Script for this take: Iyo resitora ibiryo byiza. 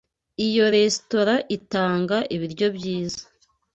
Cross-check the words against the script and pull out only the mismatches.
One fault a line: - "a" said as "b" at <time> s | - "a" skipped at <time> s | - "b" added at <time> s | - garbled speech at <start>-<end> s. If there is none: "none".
- "itanga" added at 1.6 s